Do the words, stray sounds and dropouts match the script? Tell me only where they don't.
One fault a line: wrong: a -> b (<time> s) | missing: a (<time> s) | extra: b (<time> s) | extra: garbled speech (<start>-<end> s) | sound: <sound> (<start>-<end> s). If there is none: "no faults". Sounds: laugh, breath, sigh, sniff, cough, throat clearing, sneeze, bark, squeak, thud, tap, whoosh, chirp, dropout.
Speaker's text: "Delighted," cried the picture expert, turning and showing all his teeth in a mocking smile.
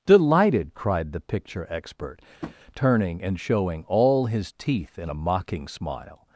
sound: tap (2.4-2.6 s)